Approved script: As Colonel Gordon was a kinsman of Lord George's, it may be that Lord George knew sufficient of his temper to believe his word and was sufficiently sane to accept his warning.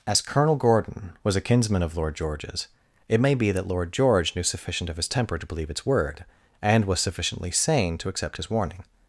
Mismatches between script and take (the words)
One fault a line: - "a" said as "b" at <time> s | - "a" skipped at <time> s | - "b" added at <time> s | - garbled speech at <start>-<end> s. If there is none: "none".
- "his" said as "its" at 5.7 s